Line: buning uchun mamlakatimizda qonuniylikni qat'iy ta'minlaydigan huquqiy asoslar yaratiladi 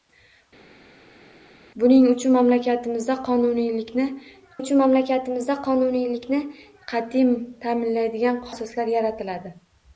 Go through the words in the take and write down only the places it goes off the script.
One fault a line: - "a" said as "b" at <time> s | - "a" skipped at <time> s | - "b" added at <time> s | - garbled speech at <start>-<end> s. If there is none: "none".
- "uchun mamlakatimizda qonuniylikni" added at 4.6 s
- "huquqiy" skipped at 8.5 s